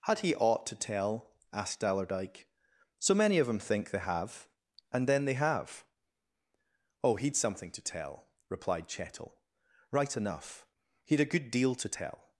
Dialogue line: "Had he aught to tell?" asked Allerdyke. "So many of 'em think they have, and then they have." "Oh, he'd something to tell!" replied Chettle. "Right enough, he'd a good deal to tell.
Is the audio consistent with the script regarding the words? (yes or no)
yes